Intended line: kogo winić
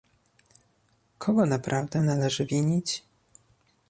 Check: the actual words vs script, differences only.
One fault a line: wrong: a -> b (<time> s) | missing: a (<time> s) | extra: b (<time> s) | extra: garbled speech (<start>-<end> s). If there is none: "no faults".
extra: naprawdę należy (1.4 s)